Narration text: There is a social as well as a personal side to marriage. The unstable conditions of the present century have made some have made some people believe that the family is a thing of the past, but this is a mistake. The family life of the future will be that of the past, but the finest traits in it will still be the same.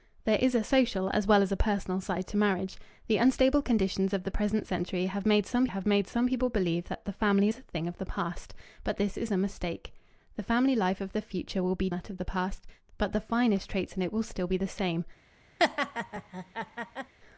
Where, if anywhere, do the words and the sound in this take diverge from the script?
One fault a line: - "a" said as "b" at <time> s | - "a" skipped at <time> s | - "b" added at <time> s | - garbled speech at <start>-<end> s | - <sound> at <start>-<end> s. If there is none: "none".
- laugh at 15.6-17.1 s